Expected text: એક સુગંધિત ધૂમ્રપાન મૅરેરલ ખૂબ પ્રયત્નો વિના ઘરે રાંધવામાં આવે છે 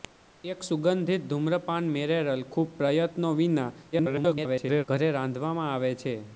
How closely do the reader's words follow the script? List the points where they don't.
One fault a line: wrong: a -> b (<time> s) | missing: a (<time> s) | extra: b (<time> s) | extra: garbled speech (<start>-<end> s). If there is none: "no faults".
extra: garbled speech (3.9-4.8 s)